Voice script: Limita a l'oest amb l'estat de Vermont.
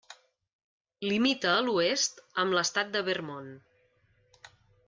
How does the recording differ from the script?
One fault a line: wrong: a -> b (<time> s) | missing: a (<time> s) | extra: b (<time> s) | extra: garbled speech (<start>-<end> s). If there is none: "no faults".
no faults